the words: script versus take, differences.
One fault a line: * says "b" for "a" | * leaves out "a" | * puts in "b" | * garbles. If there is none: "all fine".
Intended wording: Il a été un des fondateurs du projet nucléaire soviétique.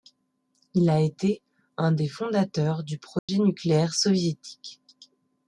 all fine